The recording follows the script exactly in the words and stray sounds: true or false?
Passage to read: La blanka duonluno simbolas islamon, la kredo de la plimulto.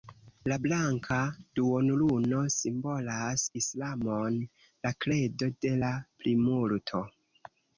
true